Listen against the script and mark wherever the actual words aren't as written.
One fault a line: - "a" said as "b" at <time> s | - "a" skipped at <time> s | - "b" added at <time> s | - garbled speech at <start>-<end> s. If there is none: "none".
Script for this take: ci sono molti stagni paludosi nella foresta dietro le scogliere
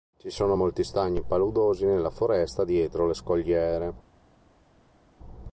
none